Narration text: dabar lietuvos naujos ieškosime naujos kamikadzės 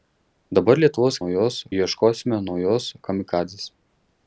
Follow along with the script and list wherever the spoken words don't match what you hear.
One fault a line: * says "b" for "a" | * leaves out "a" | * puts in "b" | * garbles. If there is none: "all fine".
all fine